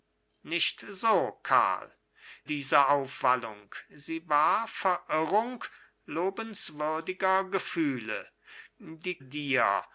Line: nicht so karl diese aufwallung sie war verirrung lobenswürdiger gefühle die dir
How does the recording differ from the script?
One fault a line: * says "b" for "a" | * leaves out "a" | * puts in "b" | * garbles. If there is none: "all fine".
all fine